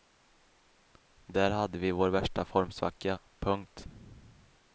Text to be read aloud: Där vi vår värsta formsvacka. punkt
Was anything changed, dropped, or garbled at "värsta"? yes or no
no